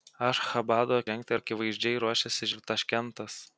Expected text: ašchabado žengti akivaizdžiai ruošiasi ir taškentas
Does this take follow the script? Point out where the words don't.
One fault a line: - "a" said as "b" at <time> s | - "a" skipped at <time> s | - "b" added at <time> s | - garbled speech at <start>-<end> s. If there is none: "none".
none